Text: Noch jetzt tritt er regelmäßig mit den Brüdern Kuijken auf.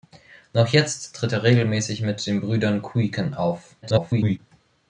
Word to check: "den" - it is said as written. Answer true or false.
true